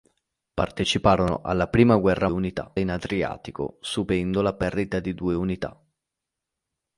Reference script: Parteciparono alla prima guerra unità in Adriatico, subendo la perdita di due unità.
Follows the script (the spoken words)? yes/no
yes